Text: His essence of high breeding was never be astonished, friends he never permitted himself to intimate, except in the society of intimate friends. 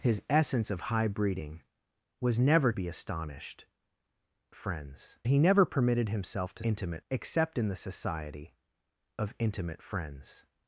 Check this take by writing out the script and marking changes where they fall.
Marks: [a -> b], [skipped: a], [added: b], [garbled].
His essence of high breeding was never be astonished, friends he never permitted himself to intimate, except in the society of intimate friends.